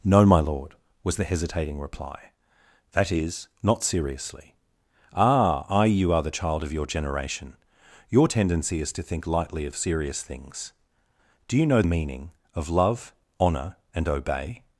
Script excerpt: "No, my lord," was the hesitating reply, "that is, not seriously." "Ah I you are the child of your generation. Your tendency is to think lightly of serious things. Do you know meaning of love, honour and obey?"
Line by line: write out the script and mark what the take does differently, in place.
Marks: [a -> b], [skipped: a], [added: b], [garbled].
"No, my lord," was the hesitating reply, "that is, not seriously." "Ah I you are the child of your generation. Your tendency is to think lightly of serious things. Do you know meaning of love, honour and obey?"